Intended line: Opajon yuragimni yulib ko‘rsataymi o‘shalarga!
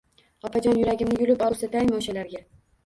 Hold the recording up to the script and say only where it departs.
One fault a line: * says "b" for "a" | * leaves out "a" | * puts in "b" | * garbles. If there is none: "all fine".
all fine